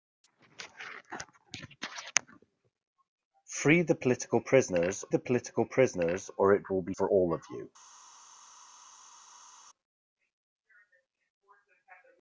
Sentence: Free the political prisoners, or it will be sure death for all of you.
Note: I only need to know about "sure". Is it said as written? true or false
false